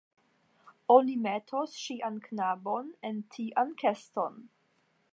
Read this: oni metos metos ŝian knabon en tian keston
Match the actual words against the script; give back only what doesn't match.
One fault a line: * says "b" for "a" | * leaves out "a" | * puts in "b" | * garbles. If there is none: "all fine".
* leaves out "metos"